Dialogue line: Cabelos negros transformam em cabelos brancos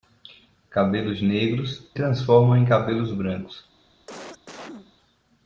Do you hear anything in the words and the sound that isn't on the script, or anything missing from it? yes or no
yes